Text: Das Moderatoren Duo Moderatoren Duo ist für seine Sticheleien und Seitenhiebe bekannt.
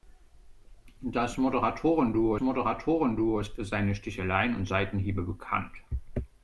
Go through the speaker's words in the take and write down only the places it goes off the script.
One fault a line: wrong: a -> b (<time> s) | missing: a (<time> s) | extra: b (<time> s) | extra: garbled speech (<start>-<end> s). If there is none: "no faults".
no faults